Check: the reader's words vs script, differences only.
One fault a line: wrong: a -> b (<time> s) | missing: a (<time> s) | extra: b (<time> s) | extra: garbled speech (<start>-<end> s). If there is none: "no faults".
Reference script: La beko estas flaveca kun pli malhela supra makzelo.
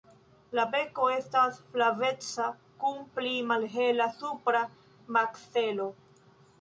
no faults